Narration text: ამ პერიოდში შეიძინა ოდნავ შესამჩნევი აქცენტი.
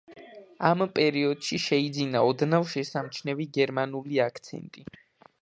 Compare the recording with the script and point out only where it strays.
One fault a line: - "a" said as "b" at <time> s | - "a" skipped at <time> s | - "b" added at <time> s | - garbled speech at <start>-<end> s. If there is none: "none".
- "გერმანული" added at 3.6 s